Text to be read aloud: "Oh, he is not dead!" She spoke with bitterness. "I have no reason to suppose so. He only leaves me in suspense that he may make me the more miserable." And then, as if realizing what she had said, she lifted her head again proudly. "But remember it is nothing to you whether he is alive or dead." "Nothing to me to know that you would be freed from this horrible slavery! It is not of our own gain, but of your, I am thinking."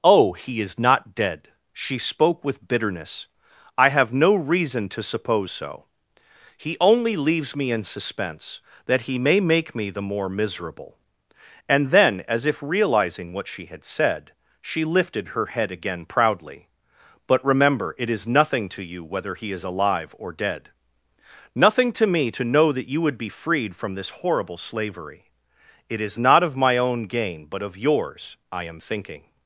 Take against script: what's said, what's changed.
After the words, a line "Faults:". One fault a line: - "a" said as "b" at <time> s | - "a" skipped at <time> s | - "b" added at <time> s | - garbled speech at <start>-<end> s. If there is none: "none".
"Oh, he is not dead!" She spoke with bitterness. "I have no reason to suppose so. He only leaves me in suspense that he may make me the more miserable." And then, as if realizing what she had said, she lifted her head again proudly. "But remember it is nothing to you whether he is alive or dead." "Nothing to me to know that you would be freed from this horrible slavery! It is not of my own gain, but of yours, I am thinking."
Faults:
- "our" said as "my" at 26.5 s
- "your" said as "yours" at 27.8 s